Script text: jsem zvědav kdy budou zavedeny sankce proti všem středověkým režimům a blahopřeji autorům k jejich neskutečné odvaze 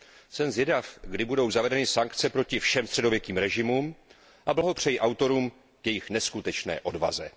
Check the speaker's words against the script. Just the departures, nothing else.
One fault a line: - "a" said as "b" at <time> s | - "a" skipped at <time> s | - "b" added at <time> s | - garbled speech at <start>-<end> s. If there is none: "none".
none